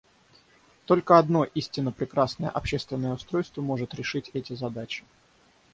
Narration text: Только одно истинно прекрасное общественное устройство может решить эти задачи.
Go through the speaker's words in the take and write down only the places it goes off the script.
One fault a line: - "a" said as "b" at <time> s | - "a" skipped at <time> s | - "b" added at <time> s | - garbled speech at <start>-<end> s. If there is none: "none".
none